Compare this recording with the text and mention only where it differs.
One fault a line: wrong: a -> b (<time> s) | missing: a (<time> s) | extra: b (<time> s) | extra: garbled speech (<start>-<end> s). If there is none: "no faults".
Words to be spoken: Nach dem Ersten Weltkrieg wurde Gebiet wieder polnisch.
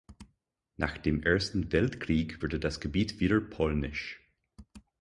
extra: das (2.6 s)